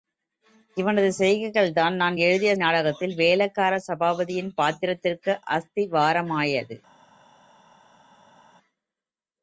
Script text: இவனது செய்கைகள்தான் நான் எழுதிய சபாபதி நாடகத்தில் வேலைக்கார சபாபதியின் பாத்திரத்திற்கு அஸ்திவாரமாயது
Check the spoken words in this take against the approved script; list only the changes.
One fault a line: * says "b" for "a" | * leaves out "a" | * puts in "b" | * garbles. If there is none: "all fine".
* leaves out "சபாபதி"